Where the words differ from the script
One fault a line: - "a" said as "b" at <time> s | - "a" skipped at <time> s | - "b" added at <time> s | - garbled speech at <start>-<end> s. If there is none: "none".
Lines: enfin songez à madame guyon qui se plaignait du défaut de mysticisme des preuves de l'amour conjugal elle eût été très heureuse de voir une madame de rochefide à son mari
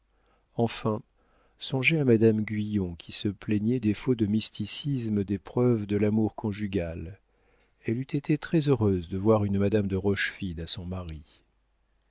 - "du" skipped at 3.8 s